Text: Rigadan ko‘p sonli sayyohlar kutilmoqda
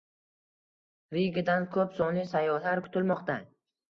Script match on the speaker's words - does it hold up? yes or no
yes